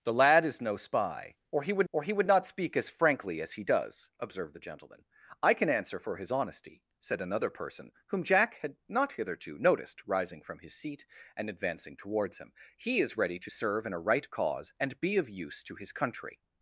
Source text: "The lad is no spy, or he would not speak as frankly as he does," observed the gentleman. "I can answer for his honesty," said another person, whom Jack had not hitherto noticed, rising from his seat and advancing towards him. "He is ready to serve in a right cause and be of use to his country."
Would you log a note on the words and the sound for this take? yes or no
yes